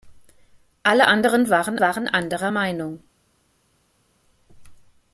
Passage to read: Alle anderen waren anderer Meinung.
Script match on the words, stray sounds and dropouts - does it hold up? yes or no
no